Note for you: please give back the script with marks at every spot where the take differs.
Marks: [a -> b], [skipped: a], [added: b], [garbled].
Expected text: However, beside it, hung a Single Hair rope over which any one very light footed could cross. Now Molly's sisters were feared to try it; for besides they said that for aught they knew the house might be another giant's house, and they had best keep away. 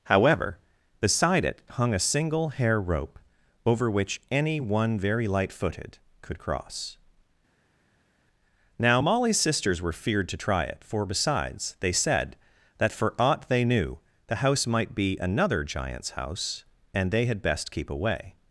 However, beside it, hung a Single Hair rope over which any one very light footed could cross. Now Molly's sisters were feared to try it; for besides they said that for aught they knew the house might be another giant's house, and they had best keep away.